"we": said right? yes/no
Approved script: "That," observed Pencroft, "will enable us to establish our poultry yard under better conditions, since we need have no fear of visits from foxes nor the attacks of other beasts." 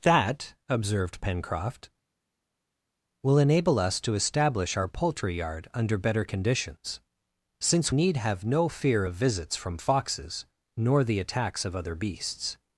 no